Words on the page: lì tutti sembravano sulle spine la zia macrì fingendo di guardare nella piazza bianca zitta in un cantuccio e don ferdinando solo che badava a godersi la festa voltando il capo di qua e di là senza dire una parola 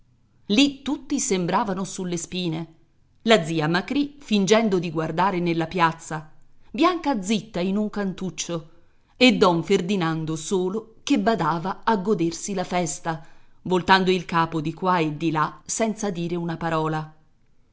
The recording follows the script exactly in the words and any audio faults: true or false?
true